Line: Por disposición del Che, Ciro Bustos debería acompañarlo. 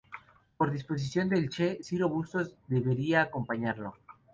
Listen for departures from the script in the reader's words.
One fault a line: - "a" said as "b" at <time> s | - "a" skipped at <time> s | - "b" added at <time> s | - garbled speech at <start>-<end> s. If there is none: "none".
none